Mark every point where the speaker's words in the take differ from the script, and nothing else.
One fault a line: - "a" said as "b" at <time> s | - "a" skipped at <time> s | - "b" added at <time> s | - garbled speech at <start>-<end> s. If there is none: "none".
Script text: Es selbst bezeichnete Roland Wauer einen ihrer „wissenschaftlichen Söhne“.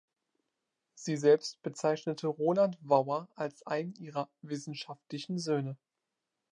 - "Es" said as "Sie" at 0.9 s
- "als" added at 3.4 s